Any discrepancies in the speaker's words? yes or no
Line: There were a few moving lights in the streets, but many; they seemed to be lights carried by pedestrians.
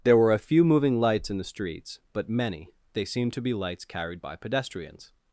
no